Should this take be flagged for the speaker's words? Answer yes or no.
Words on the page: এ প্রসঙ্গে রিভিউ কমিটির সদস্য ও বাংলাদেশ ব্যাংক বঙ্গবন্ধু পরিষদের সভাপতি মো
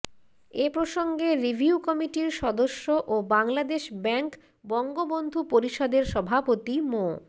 no